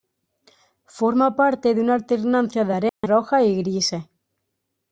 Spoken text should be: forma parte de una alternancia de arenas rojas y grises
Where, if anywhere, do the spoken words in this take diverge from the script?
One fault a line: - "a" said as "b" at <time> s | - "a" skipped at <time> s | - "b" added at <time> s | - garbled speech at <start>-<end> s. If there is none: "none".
none